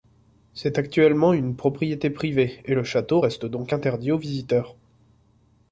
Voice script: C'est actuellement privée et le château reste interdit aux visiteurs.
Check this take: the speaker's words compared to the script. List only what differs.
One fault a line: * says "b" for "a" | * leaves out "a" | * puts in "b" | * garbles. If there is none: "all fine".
* puts in "une propriété"
* puts in "donc"